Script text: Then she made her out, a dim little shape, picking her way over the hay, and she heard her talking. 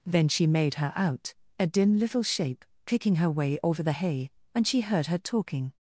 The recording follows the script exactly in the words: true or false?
false